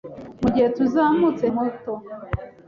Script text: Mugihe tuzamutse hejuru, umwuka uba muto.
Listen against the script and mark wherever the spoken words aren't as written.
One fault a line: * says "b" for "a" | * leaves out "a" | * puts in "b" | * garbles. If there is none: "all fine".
* leaves out "hejuru umwuka uba"